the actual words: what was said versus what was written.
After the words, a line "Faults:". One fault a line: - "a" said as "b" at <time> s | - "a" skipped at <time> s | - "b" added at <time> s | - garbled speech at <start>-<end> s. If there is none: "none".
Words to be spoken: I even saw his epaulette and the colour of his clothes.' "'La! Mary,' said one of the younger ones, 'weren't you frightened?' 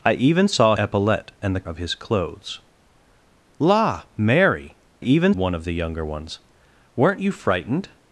I even saw epaulette and the of his clothes.' "'La! Mary,' even one of the younger ones, 'weren't you frightened?'
Faults:
- "his" skipped at 0.8 s
- "colour" skipped at 1.7 s
- "said" said as "even" at 5.0 s